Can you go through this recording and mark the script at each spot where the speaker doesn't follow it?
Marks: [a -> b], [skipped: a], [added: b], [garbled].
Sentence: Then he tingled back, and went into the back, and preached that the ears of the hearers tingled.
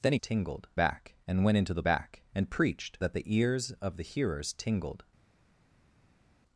Then he tingled back, and went into the back, and preached that the ears of the hearers tingled.